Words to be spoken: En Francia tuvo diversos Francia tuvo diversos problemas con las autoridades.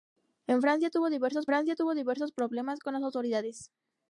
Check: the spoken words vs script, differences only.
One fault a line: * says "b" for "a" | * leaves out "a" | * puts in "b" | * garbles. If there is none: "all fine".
all fine